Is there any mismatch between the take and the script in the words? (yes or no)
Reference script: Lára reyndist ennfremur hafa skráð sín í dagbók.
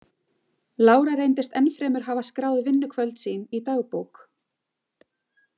yes